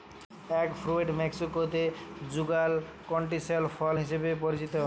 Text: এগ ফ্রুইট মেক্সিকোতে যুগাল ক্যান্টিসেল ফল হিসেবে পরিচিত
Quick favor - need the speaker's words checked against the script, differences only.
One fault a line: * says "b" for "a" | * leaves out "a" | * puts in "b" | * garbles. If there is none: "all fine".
all fine